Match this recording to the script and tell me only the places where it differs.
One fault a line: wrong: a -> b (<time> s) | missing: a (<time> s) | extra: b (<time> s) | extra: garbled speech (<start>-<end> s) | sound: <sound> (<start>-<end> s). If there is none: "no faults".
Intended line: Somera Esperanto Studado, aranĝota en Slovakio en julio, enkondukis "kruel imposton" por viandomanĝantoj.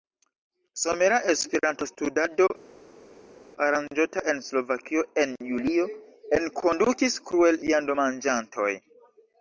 missing: imposton por (7.6 s)